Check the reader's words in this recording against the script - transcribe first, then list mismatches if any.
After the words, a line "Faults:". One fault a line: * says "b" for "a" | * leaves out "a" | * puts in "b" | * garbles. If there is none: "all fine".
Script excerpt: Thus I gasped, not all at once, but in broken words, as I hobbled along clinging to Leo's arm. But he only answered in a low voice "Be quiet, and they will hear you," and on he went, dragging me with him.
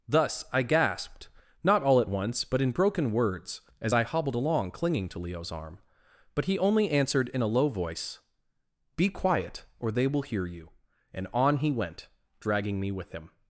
Thus I gasped, not all at once, but in broken words, as I hobbled along clinging to Leo's arm. But he only answered in a low voice "Be quiet, or they will hear you," and on he went, dragging me with him.
Faults:
* says "or" for "and"